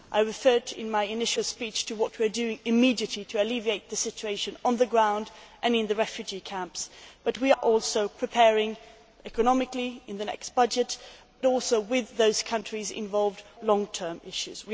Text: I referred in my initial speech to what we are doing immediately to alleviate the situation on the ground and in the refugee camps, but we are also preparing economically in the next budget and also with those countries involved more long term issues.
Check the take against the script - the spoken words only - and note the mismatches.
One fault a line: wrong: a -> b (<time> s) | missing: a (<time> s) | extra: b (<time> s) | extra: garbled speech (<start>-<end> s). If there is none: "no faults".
missing: are (7.5 s)
missing: and (11.0 s)
missing: more (13.4 s)